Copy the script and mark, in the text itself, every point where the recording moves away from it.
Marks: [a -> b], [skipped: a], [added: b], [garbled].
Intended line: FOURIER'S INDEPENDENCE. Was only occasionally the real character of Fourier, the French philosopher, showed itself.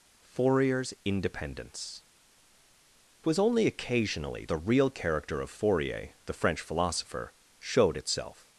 FOURIER'S INDEPENDENCE. Was only occasionally the real character of Fourier, the French philosopher, showed itself.